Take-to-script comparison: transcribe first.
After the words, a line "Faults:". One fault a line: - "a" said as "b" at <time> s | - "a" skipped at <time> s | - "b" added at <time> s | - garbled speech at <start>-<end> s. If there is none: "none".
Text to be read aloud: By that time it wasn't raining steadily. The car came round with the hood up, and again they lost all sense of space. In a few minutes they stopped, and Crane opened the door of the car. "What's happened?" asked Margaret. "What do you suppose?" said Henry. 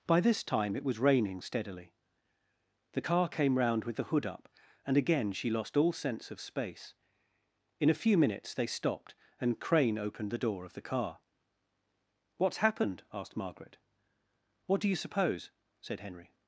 By this time it was raining steadily. The car came round with the hood up, and again she lost all sense of space. In a few minutes they stopped, and Crane opened the door of the car. "What's happened?" asked Margaret. "What do you suppose?" said Henry.
Faults:
- "that" said as "this" at 0.2 s
- "wasn't" said as "was" at 0.8 s
- "they" said as "she" at 5.3 s